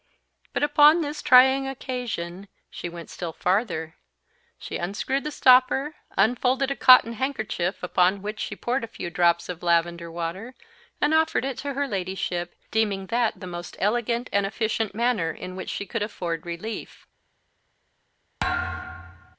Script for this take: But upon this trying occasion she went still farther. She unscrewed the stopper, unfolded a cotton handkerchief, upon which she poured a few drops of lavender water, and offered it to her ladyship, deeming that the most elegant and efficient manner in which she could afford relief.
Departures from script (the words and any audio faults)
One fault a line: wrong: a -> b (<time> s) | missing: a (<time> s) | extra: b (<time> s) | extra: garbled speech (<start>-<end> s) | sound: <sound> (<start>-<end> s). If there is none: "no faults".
sound: thud (18.4-19.4 s)